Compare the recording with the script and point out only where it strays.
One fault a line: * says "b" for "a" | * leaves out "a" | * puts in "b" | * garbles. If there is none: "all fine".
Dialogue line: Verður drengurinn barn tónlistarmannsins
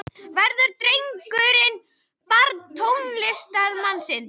all fine